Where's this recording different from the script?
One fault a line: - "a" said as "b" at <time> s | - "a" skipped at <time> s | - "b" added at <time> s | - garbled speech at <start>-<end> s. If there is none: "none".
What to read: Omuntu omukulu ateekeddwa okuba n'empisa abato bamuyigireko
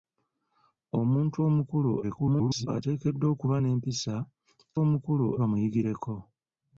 - garbled speech at 2.0-2.7 s
- "abato" said as "omukulu" at 4.8 s